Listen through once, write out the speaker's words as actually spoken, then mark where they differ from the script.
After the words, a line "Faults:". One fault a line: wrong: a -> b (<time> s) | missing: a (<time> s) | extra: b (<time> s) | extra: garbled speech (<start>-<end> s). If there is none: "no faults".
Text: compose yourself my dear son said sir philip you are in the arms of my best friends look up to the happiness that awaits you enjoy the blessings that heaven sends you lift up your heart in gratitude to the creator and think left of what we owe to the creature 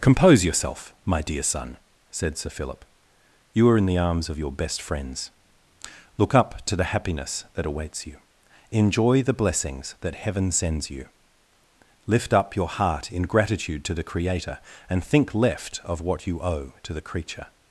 compose yourself my dear son said sir philip you are in the arms of your best friends look up to the happiness that awaits you enjoy the blessings that heaven sends you lift up your heart in gratitude to the creator and think left of what you owe to the creature
Faults:
wrong: my -> your (4.4 s)
wrong: we -> you (16.2 s)